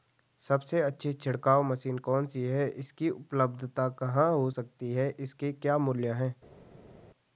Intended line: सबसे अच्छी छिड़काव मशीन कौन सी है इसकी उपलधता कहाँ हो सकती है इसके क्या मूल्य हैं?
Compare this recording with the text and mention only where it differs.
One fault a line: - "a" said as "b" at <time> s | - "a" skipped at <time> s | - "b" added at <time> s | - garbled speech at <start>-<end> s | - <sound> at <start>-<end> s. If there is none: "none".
none